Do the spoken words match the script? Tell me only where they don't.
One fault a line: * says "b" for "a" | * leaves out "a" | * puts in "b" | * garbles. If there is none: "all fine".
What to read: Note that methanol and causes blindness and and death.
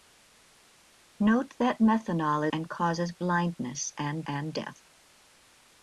all fine